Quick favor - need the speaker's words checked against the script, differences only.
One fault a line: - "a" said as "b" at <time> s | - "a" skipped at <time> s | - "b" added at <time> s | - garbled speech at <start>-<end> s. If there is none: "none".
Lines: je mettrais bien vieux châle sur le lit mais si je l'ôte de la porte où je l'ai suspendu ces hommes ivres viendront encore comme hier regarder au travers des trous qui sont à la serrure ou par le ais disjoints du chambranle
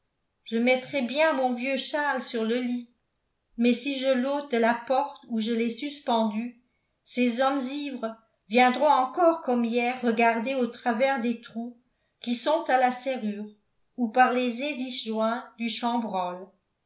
- "mon" added at 1.3 s
- "le" said as "les" at 14.3 s